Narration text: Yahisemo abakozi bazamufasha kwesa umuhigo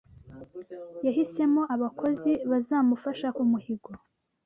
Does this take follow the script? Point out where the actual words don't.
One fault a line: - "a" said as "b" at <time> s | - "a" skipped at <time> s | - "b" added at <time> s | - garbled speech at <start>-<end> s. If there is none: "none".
- "kwesa" skipped at 3.3 s